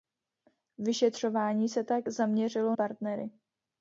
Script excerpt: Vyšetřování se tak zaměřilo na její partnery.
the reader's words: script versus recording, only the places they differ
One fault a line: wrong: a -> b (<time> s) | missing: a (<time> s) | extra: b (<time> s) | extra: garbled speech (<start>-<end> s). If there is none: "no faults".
missing: na její (2.8 s)